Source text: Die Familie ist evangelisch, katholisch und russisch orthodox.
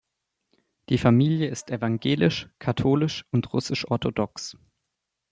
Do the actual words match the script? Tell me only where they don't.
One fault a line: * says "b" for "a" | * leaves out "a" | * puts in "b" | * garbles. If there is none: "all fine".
all fine